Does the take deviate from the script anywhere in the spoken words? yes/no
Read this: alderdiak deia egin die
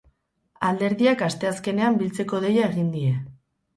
yes